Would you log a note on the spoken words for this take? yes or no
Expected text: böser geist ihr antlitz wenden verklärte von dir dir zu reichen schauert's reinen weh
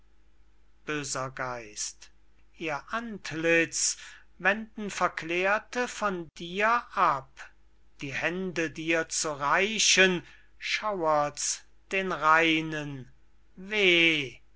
yes